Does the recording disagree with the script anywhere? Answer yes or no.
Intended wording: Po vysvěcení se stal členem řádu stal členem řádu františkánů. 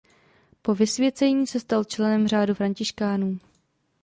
yes